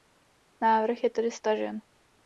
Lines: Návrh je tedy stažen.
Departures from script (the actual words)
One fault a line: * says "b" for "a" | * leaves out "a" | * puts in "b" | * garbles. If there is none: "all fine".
all fine